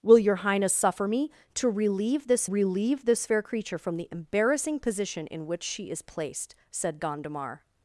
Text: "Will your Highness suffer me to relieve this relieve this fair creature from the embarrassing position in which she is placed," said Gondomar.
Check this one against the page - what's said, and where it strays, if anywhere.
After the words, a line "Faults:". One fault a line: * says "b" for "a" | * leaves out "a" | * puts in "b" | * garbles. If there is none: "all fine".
"Will your Highness suffer me to relieve this relieve this fair creature from the embarrassing position in which she is placed," said Gondomar.
Faults:
all fine